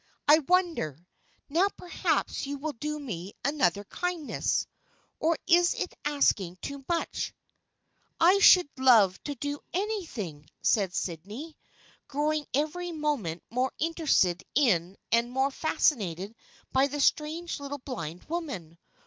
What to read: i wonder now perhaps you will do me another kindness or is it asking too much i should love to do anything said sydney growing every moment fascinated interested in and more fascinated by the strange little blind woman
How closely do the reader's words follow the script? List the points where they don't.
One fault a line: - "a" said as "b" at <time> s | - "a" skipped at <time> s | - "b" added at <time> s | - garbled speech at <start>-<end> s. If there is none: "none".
- "fascinated" said as "more" at 13.5 s